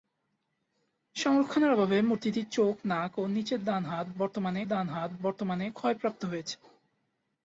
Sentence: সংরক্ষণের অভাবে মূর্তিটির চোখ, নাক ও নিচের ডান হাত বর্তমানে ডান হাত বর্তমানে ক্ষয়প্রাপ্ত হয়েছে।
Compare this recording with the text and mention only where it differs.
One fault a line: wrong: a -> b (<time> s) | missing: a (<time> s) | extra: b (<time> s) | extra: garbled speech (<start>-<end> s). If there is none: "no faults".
no faults